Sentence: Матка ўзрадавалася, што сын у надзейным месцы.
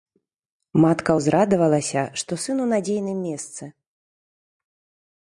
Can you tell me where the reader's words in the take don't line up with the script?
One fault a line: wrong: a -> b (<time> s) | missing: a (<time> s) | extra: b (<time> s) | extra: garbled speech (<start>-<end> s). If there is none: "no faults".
no faults